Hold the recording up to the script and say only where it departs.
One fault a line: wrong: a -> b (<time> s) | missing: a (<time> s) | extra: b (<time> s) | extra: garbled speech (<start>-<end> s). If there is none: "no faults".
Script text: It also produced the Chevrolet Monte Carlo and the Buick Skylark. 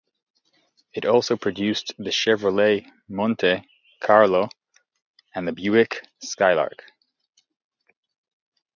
no faults